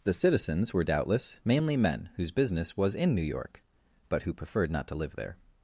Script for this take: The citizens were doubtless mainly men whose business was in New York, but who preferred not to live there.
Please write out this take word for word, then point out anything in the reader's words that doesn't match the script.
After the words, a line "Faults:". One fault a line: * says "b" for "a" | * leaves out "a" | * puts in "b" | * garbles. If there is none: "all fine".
The citizens were doubtless mainly men whose business was in New York, but who preferred not to live there.
Faults:
all fine